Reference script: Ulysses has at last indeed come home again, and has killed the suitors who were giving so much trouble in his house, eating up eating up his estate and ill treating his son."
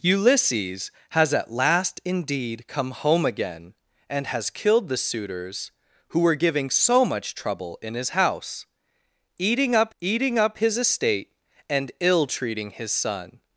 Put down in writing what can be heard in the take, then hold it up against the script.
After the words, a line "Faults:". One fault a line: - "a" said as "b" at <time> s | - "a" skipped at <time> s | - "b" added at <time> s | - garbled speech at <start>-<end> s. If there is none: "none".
Ulysses has at last indeed come home again, and has killed the suitors who were giving so much trouble in his house, eating up eating up his estate and ill treating his son."
Faults:
none